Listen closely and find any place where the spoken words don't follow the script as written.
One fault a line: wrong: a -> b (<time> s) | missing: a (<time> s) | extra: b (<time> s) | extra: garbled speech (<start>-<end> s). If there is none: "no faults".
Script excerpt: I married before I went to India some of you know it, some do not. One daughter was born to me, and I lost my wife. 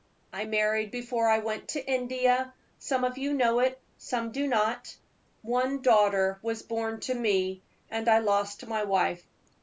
no faults